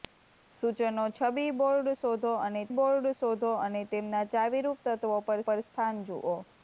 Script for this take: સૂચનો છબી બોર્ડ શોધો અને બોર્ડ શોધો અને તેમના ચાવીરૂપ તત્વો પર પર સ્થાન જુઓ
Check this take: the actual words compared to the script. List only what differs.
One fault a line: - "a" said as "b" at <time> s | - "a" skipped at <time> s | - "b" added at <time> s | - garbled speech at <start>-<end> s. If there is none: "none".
none